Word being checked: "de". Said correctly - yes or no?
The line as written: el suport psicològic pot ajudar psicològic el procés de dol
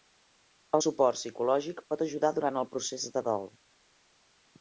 yes